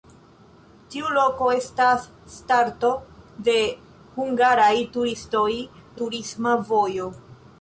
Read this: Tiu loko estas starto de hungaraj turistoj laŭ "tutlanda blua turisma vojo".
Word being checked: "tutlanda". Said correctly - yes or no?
no